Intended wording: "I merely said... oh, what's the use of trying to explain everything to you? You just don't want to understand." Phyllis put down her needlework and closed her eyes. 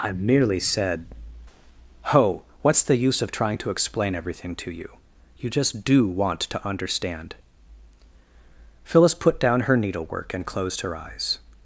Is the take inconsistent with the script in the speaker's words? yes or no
yes